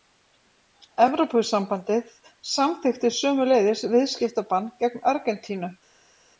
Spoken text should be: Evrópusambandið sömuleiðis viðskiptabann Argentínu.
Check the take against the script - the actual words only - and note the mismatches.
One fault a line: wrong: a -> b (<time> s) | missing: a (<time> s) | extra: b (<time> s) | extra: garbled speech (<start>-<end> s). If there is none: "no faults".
extra: samþykkti (2.5 s)
extra: gegn (4.8 s)